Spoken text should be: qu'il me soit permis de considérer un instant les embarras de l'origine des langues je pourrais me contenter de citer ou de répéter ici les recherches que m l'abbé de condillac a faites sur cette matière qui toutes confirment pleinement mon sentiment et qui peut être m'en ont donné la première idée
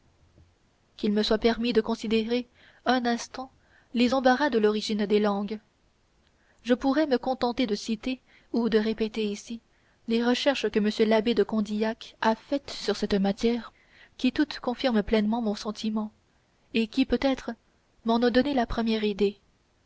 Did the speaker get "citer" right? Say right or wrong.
right